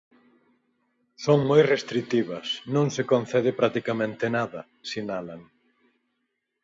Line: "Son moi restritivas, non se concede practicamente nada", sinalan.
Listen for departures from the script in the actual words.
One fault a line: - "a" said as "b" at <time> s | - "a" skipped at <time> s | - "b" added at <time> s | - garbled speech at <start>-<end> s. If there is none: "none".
none